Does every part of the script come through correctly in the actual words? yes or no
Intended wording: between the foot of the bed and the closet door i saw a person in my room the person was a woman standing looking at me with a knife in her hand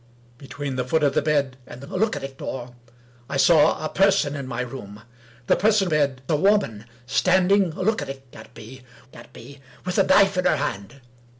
no